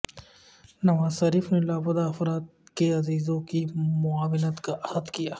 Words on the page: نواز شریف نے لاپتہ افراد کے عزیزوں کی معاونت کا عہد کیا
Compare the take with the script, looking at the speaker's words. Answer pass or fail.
pass